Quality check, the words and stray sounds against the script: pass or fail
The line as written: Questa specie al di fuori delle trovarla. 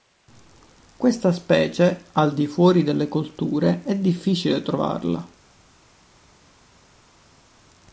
fail